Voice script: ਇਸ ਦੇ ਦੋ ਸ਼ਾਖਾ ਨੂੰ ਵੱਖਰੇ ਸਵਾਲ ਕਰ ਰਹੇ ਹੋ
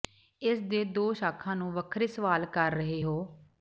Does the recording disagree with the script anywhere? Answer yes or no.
no